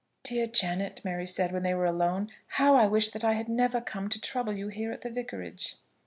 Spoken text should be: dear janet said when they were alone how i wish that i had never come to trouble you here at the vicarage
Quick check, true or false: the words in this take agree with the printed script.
false